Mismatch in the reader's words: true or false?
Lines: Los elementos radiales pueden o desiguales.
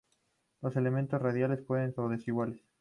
false